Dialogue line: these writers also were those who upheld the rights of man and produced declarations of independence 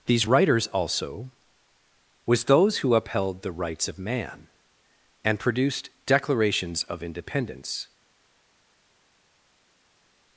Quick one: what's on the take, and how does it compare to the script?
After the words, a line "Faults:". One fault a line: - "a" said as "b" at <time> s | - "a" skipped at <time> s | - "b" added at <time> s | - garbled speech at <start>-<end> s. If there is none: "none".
these writers also was those who upheld the rights of man and produced declarations of independence
Faults:
- "were" said as "was" at 2.2 s